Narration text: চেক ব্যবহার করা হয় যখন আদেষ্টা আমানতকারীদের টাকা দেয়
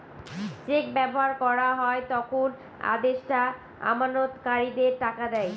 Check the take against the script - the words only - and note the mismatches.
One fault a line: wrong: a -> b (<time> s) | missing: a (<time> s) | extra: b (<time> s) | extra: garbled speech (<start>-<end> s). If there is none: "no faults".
no faults